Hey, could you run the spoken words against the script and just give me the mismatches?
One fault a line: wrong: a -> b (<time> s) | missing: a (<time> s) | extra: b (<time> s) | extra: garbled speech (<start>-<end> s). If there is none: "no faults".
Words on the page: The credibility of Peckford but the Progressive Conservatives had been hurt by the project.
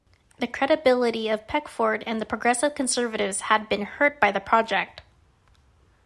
wrong: but -> and (2.1 s)